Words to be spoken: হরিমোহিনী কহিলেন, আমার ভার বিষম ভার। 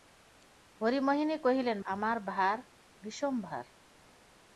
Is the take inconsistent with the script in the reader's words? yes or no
no